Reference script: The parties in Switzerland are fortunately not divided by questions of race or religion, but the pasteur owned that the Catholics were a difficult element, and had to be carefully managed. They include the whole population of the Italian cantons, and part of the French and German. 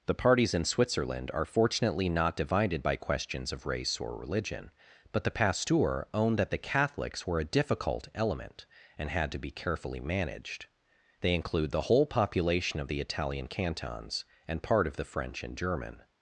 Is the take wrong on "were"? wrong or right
right